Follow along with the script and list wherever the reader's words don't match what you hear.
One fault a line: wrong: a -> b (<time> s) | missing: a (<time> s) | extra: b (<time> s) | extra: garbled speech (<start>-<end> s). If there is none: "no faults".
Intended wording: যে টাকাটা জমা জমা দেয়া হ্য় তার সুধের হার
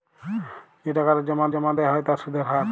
no faults